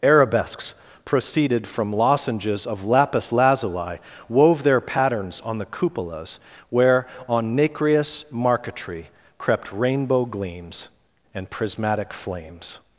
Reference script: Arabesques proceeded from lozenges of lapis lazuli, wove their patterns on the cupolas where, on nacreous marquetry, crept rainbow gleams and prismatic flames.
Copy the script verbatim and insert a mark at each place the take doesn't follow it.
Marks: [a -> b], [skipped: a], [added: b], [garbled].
Arabesques proceeded from lozenges of lapis lazuli, wove their patterns on the cupolas where, on nacreous marquetry, crept rainbow gleams and prismatic flames.